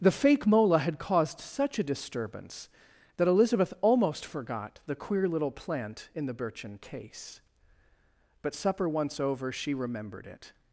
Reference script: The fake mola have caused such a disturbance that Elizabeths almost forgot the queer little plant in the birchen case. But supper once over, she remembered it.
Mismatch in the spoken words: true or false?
true